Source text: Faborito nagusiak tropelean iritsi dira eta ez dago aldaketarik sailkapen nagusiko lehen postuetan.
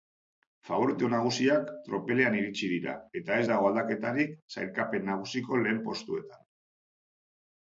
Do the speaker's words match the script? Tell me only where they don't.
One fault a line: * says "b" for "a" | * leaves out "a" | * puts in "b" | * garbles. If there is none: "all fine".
all fine